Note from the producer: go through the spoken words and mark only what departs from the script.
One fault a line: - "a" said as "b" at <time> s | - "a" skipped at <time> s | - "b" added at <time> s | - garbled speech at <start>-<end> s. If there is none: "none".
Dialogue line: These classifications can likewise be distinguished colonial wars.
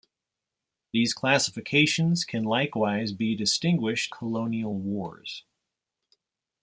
none